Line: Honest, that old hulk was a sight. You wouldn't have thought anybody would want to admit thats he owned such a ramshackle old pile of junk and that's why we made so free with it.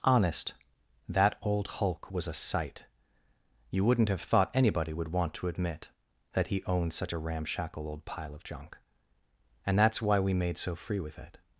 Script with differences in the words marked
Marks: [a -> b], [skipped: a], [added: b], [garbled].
Honest, that old hulk was a sight. You wouldn't have thought anybody would want to admit [thats -> that] he owned such a ramshackle old pile of junk and that's why we made so free with it.